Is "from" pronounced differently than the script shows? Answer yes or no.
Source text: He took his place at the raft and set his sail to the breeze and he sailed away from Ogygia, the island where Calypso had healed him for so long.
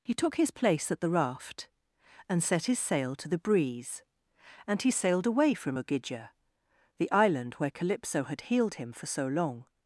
no